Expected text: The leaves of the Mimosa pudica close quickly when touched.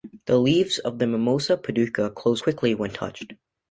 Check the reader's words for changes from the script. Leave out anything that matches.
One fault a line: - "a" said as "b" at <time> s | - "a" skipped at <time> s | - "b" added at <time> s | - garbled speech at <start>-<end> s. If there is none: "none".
none